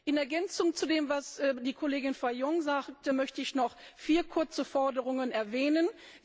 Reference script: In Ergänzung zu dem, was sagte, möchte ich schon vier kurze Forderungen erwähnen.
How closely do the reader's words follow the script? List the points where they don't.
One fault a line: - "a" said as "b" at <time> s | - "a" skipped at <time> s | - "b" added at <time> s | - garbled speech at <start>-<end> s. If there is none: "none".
- "die Kollegin Fajon" added at 1.6 s
- "schon" said as "noch" at 3.6 s